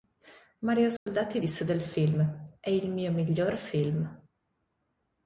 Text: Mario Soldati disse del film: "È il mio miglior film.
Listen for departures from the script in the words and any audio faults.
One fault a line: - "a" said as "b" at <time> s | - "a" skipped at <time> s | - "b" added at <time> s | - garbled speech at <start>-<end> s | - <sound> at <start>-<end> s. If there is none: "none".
- dropout at 1.0-1.1 s